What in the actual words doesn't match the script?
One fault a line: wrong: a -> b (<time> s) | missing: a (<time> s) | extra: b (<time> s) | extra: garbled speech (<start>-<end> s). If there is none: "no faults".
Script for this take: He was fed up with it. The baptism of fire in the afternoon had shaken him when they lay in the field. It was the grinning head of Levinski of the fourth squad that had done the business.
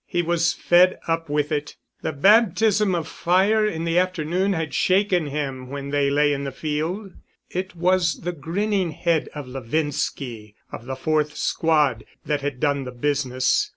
no faults